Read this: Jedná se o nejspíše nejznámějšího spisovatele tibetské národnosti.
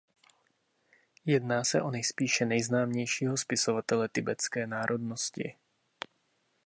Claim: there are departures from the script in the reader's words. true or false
false